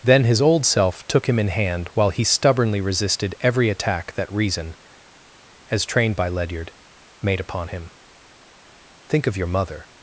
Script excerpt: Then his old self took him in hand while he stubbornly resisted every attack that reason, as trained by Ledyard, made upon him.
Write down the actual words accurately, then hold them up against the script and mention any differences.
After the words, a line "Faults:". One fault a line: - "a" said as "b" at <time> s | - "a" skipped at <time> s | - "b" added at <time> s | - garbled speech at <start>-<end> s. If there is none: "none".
Then his old self took him in hand while he stubbornly resisted every attack that reason, as trained by Ledyard, made upon him. "Think of your mother
Faults:
- "Think of your mother" added at 9.1 s